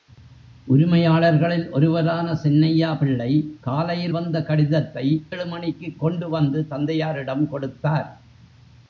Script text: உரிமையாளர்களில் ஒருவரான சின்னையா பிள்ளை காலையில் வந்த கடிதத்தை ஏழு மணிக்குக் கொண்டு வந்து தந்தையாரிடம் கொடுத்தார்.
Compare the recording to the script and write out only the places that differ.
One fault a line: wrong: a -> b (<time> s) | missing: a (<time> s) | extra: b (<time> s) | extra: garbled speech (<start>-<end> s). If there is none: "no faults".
no faults